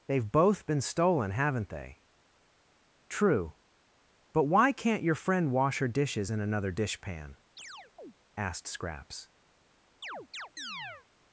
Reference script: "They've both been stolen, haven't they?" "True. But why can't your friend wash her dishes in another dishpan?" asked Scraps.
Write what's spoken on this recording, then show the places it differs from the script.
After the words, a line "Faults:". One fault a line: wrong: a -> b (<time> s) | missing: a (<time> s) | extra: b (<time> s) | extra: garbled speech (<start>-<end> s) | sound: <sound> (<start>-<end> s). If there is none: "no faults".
"They've both been stolen, haven't they?" "True. But why can't your friend wash her dishes in another dishpan?" asked Scraps.
Faults:
sound: chirp (7.6-8.1 s)
sound: chirp (10.0-11.1 s)